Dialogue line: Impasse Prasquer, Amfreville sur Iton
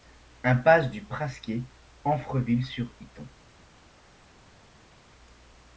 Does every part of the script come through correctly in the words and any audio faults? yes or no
no